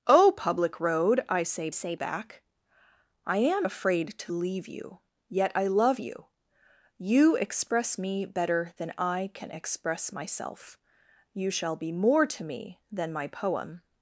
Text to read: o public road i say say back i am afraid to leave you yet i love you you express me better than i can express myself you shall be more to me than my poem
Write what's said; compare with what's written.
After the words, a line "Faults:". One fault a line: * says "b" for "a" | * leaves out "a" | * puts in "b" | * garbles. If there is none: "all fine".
o public road i say say back i am afraid to leave you yet i love you you express me better than i can express myself you shall be more to me than my poem
Faults:
all fine